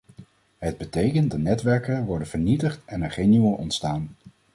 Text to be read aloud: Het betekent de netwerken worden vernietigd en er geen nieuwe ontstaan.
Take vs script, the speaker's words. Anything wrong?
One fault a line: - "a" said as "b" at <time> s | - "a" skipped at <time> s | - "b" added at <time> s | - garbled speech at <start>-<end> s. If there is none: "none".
none